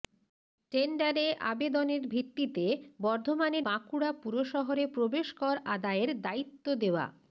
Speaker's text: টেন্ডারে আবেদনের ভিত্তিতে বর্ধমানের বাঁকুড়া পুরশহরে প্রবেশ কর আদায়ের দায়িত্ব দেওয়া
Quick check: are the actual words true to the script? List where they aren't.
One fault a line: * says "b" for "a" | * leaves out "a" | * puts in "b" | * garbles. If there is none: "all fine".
all fine